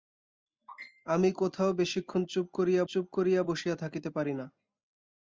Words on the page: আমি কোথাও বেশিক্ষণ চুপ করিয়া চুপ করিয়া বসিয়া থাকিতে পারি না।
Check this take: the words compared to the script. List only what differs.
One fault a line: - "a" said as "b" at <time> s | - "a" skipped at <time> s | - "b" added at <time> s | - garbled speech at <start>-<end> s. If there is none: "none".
none